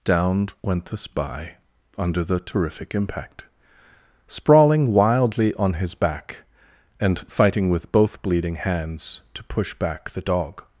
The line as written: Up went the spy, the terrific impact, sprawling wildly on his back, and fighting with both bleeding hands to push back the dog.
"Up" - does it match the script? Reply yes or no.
no